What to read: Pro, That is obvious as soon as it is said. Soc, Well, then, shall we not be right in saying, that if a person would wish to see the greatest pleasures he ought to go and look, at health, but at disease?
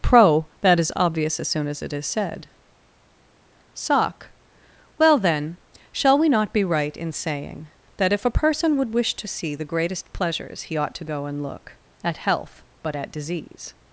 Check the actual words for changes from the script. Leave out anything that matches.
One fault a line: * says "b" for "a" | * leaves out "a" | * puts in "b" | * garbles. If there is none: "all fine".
all fine